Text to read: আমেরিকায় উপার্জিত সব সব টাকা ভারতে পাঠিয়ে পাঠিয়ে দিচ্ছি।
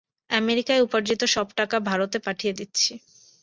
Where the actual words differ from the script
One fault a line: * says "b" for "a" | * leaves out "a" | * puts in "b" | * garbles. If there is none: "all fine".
* leaves out "সব"
* leaves out "পাঠিয়ে"